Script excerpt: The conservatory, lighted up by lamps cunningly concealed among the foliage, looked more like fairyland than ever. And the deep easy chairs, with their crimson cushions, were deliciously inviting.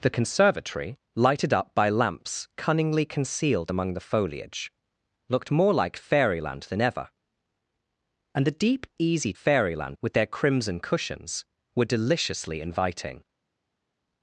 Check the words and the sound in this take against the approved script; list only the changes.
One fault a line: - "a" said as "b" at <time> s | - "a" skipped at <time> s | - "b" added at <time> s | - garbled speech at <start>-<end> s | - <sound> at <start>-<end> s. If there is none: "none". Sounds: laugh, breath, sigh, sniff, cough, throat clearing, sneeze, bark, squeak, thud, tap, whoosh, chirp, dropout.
- "chairs" said as "fairyland" at 9.3 s